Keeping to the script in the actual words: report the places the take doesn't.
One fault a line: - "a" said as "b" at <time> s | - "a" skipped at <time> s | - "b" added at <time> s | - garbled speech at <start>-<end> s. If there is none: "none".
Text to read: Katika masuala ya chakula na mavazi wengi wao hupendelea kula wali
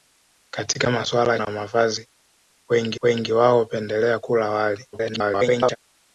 - "chakula" skipped at 1.4 s
- "wengi" added at 3.0 s
- garbled speech at 4.9-5.8 s